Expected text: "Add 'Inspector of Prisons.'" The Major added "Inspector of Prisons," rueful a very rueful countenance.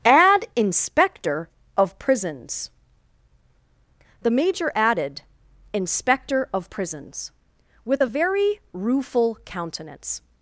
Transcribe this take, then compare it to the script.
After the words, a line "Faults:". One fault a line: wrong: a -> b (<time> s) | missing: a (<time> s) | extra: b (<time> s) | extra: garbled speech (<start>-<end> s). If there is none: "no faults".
"Add 'Inspector of Prisons.'" The Major added "Inspector of Prisons," with a very rueful countenance.
Faults:
wrong: rueful -> with (7.8 s)